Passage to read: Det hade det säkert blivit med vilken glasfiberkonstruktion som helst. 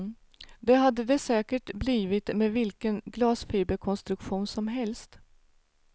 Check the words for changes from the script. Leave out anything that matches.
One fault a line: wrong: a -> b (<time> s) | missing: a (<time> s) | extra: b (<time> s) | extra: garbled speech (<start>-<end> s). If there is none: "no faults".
no faults